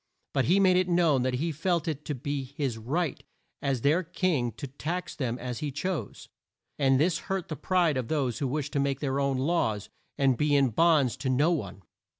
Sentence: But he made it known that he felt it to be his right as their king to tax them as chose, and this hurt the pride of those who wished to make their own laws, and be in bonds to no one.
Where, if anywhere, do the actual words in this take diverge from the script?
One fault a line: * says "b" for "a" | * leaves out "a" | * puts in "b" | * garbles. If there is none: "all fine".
* puts in "he"